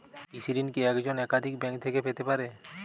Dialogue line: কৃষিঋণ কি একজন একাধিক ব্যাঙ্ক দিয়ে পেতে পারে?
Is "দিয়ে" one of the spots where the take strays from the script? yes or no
yes